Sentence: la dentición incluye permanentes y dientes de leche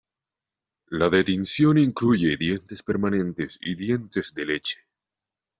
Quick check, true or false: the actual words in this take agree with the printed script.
false